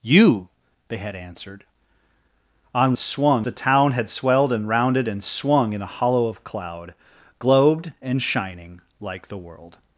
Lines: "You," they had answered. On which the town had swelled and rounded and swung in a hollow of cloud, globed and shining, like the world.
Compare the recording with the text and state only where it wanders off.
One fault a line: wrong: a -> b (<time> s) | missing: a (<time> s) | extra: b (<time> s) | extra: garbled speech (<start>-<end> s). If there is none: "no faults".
wrong: which -> swung (3.0 s)